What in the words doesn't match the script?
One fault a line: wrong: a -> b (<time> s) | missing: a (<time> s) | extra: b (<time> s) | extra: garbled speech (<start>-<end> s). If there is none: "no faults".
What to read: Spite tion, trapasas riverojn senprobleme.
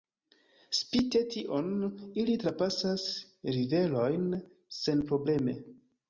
extra: ili (2.2 s)